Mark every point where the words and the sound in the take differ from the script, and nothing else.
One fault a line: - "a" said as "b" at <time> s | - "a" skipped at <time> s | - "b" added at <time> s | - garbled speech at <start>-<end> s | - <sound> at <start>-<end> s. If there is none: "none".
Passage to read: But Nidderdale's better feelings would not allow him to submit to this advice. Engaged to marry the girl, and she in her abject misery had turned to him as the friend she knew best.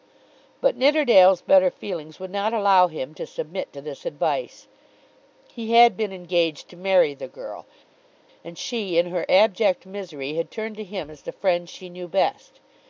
- "He had been" added at 5.5 s